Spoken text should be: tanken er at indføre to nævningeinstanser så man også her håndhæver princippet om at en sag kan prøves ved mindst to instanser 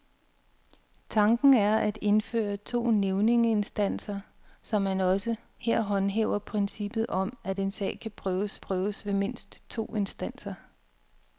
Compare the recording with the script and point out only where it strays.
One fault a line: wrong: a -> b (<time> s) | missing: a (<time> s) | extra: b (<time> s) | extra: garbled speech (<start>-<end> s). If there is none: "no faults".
extra: prøves (8.6 s)